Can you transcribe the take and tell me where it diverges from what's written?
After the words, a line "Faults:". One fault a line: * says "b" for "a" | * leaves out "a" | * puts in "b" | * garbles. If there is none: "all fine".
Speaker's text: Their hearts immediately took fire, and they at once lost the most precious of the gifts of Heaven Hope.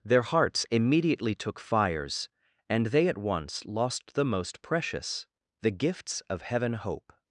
Their hearts immediately took fires, and they at once lost the most precious the gifts of Heaven Hope.
Faults:
* says "fires" for "fire"
* leaves out "of"